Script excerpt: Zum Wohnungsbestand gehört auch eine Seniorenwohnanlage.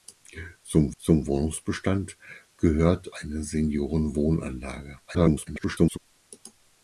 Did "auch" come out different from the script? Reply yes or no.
yes